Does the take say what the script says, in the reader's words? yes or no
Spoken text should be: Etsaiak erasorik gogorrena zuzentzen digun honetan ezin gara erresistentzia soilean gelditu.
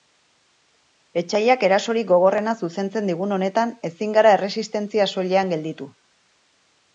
yes